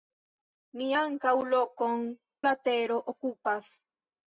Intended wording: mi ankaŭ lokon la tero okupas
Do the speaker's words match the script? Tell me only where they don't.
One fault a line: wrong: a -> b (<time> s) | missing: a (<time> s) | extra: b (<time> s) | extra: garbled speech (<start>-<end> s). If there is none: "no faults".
no faults